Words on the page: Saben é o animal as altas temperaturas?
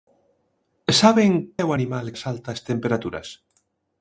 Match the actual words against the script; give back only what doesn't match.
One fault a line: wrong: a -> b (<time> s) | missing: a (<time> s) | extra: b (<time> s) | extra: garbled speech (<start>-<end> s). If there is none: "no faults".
no faults